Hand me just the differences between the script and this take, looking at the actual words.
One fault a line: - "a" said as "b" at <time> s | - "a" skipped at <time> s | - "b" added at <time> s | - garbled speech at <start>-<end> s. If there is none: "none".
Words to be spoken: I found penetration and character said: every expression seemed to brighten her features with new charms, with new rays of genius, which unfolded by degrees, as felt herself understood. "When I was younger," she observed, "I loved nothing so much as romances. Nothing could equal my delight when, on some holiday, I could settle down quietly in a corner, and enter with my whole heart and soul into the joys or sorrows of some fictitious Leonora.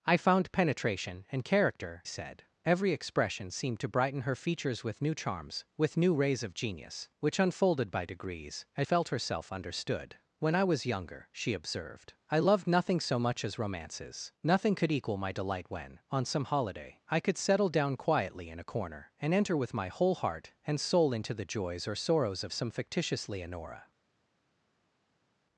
none